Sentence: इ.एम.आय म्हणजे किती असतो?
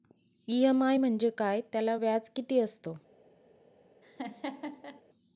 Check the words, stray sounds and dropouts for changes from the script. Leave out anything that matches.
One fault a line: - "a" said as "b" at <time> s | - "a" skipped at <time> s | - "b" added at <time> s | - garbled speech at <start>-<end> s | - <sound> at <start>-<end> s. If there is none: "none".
- "काय त्याला व्याज" added at 1.3 s
- laugh at 4.0-5.0 s